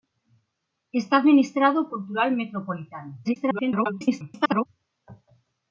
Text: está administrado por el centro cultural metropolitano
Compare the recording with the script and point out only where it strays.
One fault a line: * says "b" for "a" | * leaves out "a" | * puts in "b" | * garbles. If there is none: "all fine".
* leaves out "por el centro"
* garbles